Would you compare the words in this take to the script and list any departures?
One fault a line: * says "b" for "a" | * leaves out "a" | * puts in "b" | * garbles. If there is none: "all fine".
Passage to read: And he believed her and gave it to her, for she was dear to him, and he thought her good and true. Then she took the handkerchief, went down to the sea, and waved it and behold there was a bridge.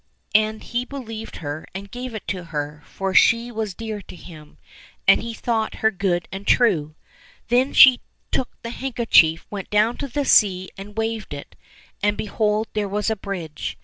all fine